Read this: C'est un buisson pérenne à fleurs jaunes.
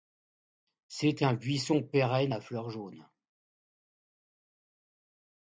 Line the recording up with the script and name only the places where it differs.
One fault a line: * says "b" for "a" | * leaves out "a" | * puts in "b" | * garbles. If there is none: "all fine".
all fine